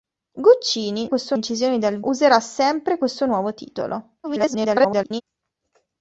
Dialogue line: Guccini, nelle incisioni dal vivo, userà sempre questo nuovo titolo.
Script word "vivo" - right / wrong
wrong